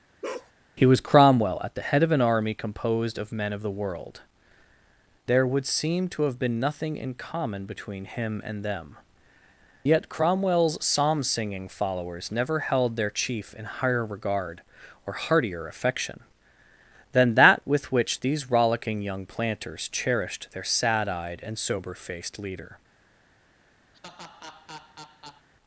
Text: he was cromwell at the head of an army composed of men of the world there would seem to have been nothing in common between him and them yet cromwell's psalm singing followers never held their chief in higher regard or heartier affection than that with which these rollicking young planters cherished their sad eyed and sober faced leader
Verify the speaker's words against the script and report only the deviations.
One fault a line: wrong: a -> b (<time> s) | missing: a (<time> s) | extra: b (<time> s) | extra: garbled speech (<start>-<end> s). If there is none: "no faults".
no faults